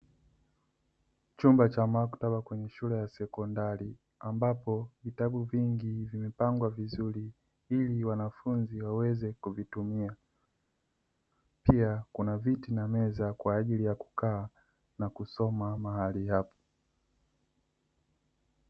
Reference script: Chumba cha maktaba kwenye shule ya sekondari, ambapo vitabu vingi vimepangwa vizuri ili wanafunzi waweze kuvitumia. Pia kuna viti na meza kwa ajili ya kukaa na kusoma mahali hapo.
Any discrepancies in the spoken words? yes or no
no